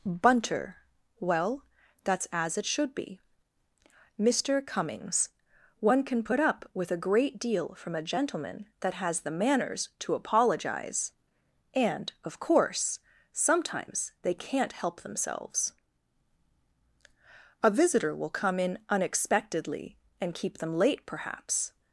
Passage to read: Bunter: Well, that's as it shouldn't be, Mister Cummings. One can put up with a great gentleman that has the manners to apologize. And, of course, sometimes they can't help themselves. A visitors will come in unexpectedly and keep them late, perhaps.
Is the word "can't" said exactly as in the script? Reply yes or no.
yes